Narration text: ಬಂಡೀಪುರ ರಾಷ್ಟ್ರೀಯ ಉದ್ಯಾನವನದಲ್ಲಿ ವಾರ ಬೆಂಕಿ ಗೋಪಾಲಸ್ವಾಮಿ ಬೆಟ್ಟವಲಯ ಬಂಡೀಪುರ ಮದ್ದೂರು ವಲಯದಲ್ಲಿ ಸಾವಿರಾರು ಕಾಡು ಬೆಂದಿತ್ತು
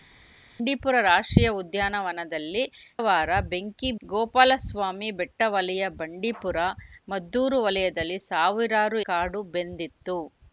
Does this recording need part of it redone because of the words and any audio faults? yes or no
no